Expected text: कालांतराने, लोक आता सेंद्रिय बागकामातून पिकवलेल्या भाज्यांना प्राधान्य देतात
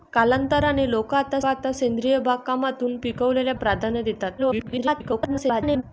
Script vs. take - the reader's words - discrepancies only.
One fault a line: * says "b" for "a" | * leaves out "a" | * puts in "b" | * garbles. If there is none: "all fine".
* puts in "आता"
* leaves out "भाज्यांना"
* garbles